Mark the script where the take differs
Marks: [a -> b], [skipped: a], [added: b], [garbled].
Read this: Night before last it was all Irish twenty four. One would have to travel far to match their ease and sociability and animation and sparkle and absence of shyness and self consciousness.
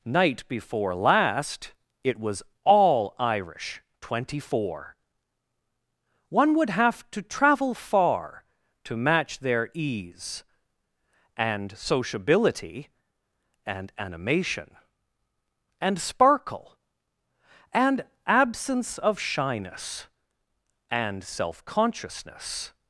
Night before last it was all Irish twenty four. One would have to travel far to match their ease and sociability and animation and sparkle and absence of shyness and self consciousness.